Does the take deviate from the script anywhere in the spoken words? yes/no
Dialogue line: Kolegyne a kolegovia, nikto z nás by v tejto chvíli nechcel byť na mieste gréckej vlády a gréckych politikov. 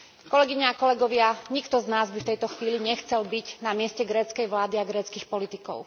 no